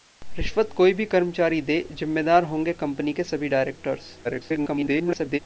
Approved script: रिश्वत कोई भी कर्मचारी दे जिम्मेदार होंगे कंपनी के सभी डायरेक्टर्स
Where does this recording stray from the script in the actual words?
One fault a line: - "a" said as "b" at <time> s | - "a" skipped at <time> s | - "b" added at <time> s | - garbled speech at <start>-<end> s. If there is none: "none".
- garbled speech at 4.2-5.4 s